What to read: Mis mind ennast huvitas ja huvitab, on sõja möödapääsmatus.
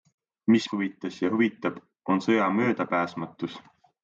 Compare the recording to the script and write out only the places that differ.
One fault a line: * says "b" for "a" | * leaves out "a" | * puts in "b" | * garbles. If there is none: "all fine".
* leaves out "mind ennast"